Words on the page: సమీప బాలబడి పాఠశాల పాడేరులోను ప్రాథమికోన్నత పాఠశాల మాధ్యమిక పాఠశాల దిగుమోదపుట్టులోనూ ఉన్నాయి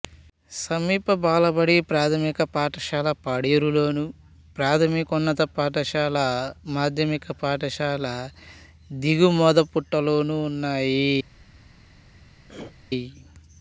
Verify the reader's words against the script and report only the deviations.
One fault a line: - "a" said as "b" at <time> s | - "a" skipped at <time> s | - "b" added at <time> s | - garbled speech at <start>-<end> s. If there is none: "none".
- "ప్రాథమిక" added at 1.9 s